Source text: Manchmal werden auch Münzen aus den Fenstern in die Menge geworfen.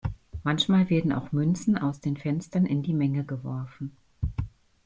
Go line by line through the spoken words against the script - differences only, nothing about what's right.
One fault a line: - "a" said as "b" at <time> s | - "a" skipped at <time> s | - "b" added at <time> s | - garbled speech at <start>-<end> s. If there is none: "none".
none